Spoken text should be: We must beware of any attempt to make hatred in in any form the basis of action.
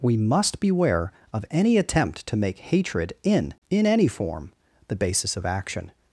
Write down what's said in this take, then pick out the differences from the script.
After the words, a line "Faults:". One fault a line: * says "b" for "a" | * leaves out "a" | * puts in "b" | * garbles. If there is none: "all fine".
We must beware of any attempt to make hatred in in any form the basis of action.
Faults:
all fine